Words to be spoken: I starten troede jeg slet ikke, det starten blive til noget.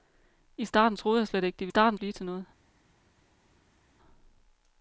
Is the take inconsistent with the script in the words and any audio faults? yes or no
no